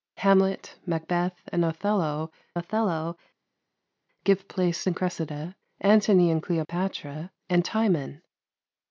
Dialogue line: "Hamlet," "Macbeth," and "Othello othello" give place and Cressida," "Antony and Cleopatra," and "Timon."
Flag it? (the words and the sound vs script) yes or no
no